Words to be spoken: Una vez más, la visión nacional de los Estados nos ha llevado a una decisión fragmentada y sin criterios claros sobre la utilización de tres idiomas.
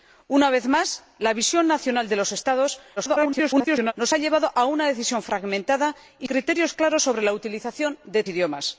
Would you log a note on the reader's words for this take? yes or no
yes